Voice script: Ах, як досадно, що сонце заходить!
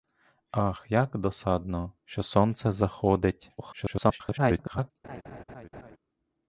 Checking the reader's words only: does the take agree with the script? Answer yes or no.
no